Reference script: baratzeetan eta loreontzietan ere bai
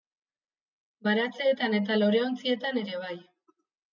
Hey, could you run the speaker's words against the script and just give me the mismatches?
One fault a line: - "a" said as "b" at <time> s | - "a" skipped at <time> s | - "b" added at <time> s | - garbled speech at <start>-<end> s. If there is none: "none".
none